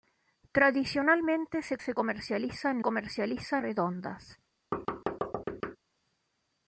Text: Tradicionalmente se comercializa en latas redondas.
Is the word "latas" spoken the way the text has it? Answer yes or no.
no